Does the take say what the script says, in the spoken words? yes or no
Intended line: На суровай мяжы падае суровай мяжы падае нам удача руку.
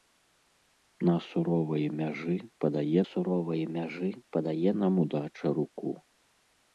yes